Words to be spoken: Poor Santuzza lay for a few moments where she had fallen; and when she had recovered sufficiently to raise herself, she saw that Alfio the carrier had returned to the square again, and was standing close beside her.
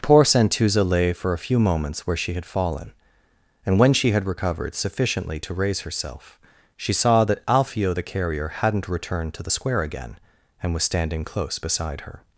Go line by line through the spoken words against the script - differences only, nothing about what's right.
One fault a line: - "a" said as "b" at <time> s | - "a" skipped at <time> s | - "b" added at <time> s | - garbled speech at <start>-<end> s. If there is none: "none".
- "had" said as "hadn't" at 8.5 s